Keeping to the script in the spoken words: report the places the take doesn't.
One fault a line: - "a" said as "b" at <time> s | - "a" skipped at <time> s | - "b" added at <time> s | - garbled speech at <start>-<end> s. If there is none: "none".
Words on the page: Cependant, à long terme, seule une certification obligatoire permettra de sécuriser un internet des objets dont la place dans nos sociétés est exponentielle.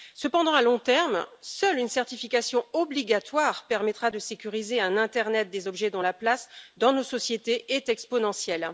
none